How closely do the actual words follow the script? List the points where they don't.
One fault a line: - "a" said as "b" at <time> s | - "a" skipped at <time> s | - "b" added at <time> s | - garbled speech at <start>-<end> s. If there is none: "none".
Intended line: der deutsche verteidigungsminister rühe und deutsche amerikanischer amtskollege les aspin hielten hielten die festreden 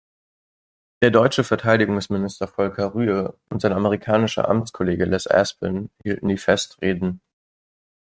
- "volker" added at 2.5 s
- "deutsche" said as "sein" at 3.6 s
- "hielten" skipped at 6.3 s